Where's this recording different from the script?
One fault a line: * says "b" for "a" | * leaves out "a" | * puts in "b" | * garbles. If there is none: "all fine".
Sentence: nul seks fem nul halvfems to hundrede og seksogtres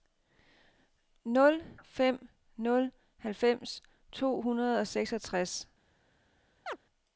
* leaves out "seks"